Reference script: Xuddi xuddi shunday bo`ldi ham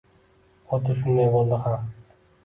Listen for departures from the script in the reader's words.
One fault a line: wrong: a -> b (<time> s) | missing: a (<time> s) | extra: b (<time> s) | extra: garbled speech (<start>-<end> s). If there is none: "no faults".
missing: xuddi (0.9 s)